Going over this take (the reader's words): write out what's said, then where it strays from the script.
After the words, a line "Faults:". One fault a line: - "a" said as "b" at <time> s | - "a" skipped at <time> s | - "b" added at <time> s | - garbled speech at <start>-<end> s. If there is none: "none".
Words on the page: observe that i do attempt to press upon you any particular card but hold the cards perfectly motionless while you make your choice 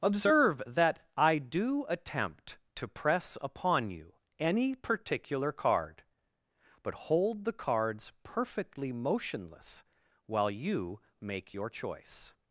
observe that i do attempt to press upon you any particular card but hold the cards perfectly motionless while you make your choice
Faults:
none